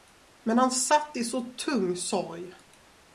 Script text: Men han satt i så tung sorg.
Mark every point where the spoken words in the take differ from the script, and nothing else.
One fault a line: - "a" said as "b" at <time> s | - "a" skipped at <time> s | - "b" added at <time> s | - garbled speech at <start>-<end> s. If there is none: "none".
none